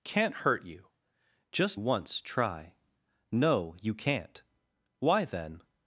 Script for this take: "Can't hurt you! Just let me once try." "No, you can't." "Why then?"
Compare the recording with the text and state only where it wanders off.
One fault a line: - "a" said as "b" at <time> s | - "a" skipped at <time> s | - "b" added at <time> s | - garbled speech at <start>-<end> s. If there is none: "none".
- "let me" skipped at 1.8 s